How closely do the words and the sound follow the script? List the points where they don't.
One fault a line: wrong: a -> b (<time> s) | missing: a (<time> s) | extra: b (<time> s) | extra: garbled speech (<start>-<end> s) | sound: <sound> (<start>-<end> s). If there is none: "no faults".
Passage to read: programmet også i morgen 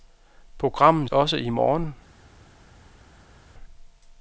no faults